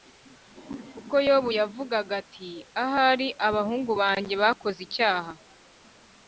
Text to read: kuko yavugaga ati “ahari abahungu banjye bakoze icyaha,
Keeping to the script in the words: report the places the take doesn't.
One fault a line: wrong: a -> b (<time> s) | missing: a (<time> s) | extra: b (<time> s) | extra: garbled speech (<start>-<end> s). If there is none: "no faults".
extra: yobu (1.3 s)